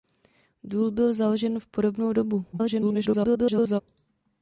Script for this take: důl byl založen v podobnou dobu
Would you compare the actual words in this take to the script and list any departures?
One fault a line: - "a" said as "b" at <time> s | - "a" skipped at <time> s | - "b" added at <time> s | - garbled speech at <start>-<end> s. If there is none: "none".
- garbled speech at 2.5-3.8 s